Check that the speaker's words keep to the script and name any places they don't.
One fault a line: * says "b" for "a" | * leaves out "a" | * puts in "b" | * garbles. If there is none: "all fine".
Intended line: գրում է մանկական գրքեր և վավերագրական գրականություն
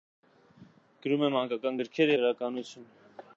* leaves out "և վավերագրական"